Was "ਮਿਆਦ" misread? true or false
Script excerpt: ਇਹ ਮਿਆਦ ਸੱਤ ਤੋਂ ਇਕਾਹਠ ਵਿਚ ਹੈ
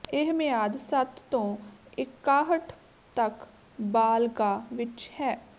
false